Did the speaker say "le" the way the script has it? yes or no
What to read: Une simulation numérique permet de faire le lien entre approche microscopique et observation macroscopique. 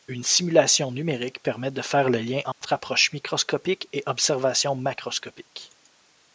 yes